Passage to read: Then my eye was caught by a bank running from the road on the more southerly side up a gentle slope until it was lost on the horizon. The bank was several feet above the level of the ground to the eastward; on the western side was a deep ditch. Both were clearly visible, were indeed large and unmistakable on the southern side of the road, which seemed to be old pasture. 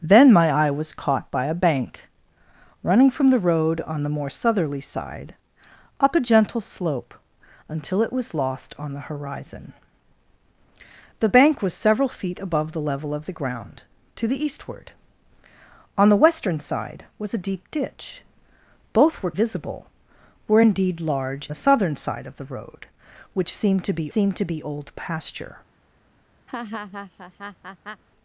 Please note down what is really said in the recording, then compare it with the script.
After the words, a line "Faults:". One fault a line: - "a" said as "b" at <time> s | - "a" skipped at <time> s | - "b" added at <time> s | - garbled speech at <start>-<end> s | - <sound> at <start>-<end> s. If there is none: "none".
Then my eye was caught by a bank running from the road on the more southerly side up a gentle slope until it was lost on the horizon. The bank was several feet above the level of the ground to the eastward; on the western side was a deep ditch. Both were visible, were indeed large the southern side of the road, which seemed to be seemed to be old pasture.
Faults:
- "clearly" skipped at 19.3 s
- "and unmistakable on" skipped at 21.5 s
- "seemed to be" added at 24.1 s
- laugh at 26.5-28.0 s